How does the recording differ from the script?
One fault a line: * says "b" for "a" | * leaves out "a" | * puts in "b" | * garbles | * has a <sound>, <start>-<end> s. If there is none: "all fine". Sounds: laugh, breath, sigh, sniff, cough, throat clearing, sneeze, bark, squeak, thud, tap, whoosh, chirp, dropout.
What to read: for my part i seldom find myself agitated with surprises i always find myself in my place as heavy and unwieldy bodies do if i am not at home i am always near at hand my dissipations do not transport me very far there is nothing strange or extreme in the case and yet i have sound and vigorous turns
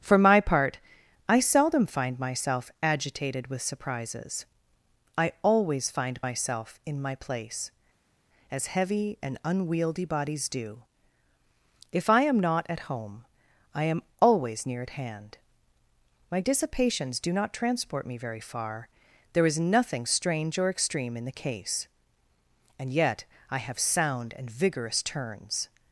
all fine